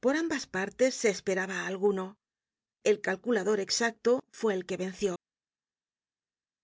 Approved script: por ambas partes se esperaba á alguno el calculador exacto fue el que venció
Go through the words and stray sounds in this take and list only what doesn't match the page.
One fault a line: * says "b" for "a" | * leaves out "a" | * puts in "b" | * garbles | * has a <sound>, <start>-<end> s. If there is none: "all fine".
all fine